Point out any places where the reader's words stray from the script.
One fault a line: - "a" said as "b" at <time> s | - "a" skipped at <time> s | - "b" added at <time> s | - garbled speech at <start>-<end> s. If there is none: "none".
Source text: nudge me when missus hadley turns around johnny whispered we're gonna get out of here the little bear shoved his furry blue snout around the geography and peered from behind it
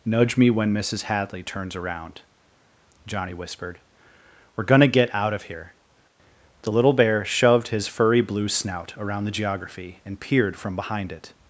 none